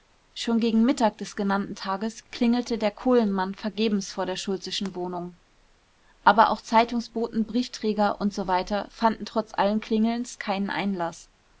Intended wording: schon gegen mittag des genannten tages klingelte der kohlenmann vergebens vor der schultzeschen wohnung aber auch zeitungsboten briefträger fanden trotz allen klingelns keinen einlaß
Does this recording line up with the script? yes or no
no